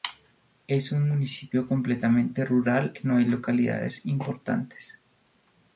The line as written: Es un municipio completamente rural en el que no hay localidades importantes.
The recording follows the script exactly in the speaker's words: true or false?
false